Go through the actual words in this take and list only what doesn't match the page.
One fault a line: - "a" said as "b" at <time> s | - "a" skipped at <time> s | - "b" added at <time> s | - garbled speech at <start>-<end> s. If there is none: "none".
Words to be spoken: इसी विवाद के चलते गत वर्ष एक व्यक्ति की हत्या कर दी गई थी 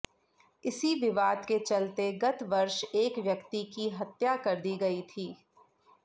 none